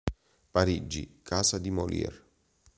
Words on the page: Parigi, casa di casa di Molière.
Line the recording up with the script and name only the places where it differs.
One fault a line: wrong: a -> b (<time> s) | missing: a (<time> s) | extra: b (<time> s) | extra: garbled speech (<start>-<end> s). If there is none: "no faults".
missing: casa di (1.7 s)